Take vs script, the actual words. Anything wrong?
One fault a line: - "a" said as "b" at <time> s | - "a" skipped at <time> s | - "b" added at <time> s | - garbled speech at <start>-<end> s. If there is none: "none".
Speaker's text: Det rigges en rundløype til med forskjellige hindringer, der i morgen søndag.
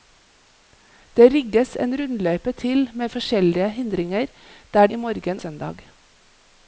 none